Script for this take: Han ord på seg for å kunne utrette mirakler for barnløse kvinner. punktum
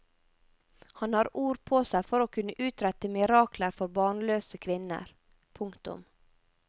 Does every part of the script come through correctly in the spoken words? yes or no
no